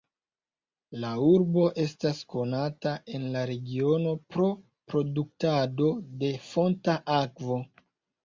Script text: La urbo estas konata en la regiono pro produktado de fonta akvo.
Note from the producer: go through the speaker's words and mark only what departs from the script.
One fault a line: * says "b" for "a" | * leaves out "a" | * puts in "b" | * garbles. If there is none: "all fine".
all fine